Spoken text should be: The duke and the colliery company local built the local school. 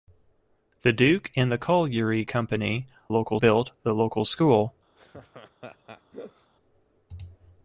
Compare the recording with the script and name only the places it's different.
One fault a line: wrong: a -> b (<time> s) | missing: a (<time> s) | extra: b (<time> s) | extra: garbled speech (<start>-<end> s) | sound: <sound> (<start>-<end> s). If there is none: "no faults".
sound: laugh (5.0-6.5 s)